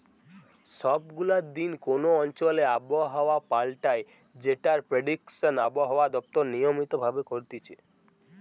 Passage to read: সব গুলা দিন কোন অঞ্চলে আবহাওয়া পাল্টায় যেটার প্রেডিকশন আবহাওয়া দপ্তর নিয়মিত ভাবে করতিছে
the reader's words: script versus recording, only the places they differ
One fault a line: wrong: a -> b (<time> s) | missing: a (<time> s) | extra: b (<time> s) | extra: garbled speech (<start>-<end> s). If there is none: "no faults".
no faults